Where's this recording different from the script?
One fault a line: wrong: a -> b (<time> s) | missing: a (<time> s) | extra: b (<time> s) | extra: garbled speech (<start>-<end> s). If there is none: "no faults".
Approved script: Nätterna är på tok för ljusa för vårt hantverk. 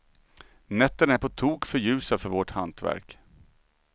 no faults